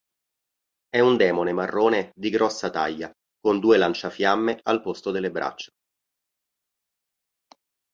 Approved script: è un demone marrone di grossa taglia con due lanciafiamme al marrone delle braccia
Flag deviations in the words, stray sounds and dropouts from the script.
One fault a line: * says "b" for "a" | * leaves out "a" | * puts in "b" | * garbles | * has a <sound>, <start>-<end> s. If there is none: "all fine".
* says "posto" for "marrone"